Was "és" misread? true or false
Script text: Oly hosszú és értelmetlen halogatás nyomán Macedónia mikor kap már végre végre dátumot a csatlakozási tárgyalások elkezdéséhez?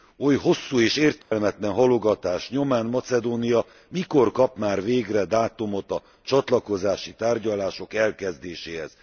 false